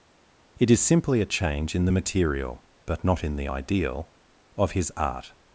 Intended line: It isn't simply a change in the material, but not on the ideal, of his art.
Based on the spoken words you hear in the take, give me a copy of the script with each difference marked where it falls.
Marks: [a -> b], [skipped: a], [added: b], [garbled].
It [isn't -> is] simply a change in the material, but not [on -> in] the ideal, of his art.